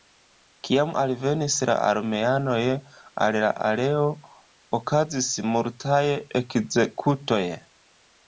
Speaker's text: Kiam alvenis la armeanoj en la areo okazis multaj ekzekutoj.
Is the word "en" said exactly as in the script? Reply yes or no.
no